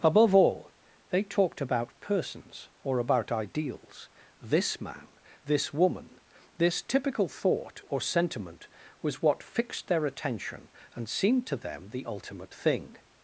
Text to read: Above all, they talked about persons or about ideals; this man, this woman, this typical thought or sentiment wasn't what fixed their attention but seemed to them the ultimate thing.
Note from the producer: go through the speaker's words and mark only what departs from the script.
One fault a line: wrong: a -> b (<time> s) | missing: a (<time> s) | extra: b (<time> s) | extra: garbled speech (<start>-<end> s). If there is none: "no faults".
wrong: wasn't -> was (9.0 s)
wrong: but -> and (10.9 s)